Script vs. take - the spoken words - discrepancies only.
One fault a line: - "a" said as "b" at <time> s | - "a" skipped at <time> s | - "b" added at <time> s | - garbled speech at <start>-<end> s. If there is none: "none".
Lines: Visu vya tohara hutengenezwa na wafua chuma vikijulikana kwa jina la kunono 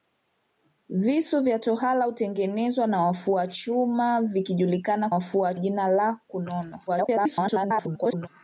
- "kwa" said as "wafua" at 5.1 s
- garbled speech at 6.9-8.3 s